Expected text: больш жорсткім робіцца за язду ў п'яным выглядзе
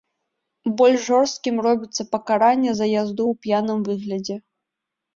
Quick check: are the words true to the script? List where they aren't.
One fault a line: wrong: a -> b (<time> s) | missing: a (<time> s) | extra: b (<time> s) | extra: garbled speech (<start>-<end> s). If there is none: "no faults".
extra: пакаранне (2.2 s)